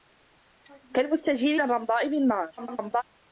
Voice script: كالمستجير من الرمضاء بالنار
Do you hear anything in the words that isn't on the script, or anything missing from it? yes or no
yes